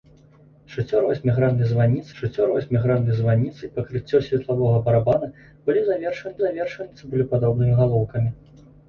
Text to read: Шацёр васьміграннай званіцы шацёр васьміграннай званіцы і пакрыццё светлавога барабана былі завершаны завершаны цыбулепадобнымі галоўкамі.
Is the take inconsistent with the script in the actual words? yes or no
no